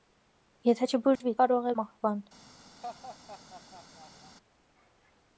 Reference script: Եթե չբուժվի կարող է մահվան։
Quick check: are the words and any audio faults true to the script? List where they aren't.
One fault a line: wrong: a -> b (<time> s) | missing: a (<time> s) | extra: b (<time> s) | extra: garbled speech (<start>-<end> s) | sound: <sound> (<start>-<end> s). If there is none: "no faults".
sound: dropout (1.2-1.2 s)
sound: laugh (2.8-4.4 s)